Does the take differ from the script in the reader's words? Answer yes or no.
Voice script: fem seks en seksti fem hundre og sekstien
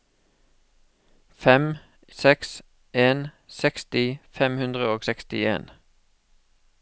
no